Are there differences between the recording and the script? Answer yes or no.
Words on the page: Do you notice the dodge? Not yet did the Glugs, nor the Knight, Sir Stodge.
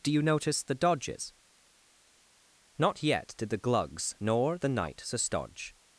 yes